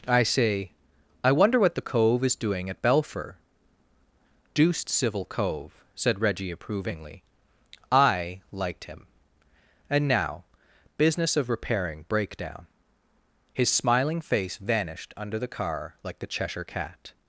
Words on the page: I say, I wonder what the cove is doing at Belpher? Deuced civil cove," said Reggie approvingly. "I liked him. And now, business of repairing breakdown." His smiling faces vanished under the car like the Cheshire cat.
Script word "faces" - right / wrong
wrong